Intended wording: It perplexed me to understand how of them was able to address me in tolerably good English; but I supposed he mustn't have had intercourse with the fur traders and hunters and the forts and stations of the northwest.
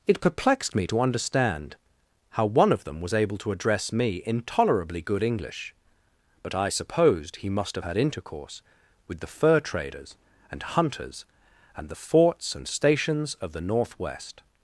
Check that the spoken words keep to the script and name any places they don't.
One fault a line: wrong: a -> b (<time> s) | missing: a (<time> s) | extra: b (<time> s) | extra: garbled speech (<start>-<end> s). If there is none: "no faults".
extra: one (2.5 s)
wrong: mustn't -> must (7.5 s)